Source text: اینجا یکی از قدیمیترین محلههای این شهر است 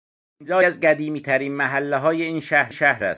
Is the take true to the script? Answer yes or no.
no